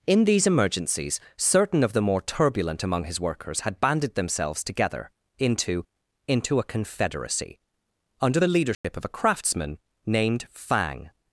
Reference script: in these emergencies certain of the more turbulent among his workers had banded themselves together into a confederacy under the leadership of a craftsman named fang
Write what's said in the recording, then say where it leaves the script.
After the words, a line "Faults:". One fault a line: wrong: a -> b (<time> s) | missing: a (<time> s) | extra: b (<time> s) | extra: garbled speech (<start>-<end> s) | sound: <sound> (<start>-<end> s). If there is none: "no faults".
in these emergencies certain of the more turbulent among his workers had banded themselves together into into a confederacy under the leadership of a craftsman named fang
Faults:
extra: into (6.3 s)
sound: dropout (8.7-8.8 s)